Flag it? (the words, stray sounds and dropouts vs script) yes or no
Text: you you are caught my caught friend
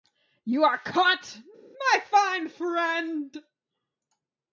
yes